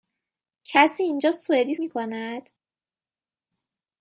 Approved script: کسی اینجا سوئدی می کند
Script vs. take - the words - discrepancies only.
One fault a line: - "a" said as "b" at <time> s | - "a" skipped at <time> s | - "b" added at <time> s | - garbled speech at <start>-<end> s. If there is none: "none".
none